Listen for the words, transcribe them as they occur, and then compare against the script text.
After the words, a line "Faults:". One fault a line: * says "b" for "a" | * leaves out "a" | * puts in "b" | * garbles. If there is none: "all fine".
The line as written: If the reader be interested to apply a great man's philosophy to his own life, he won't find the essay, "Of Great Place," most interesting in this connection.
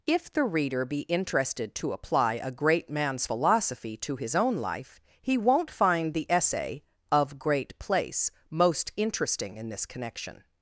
If the reader be interested to apply a great man's philosophy to his own life, he won't find the essay, "Of Great Place," most interesting in this connection.
Faults:
all fine